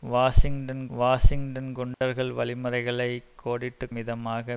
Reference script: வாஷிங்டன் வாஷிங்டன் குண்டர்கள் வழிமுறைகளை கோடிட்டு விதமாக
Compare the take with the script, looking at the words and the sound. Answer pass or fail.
fail